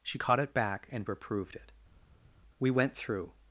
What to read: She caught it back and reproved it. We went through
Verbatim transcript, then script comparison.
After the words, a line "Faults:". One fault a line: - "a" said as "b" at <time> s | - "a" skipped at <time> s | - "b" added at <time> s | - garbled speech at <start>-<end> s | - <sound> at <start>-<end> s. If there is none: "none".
She caught it back and reproved it. We went through
Faults:
none